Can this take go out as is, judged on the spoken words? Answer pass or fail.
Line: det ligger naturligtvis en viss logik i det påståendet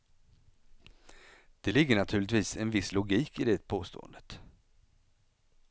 pass